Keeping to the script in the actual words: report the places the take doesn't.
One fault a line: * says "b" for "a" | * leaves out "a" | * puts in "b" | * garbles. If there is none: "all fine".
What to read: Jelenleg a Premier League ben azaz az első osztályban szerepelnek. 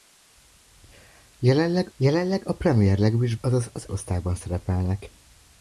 * puts in "jelenleg"
* leaves out "ben"
* leaves out "első"